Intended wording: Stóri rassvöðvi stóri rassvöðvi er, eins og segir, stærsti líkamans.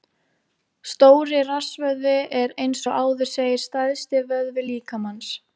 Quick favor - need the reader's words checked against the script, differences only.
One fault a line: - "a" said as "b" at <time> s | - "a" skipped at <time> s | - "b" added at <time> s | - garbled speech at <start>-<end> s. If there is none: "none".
- "stóri rassvöðvi" skipped at 2.1 s
- "áður" added at 3.0 s
- "vöðvi" added at 4.3 s